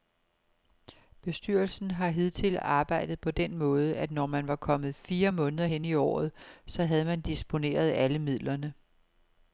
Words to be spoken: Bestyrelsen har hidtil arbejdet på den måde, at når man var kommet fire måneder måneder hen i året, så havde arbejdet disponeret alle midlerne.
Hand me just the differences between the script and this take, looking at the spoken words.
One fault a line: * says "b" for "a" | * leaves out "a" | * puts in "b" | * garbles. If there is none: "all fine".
* leaves out "måneder"
* says "man" for "arbejdet"